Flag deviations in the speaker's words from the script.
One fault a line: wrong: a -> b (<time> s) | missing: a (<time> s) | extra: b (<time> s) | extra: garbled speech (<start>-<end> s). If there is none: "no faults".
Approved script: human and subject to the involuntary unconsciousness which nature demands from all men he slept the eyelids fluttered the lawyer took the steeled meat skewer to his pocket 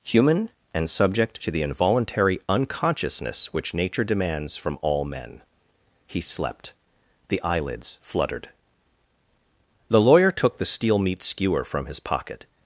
wrong: steeled -> steel (10.7 s)
wrong: to -> from (11.6 s)